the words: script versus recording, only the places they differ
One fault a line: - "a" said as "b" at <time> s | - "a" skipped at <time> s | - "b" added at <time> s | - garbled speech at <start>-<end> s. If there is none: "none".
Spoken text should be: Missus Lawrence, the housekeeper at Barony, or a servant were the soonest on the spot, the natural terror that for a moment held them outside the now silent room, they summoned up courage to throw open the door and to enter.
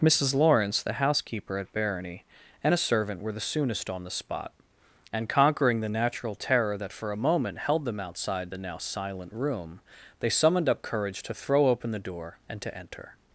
- "or" said as "and" at 2.6 s
- "and conquering" added at 5.1 s